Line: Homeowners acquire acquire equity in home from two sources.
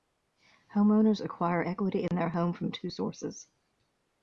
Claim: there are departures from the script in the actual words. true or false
true